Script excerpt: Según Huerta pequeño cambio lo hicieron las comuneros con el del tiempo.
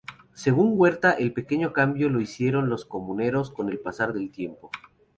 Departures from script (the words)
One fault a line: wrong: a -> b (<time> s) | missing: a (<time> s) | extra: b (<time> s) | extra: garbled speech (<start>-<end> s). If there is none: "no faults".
extra: el (1.1 s)
wrong: las -> los (2.7 s)
extra: pasar (3.8 s)